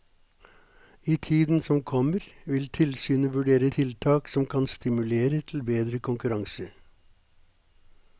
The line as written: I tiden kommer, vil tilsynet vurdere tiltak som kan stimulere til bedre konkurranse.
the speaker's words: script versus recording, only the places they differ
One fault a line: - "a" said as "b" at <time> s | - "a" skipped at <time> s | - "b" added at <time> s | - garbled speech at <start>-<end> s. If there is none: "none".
- "som" added at 1.6 s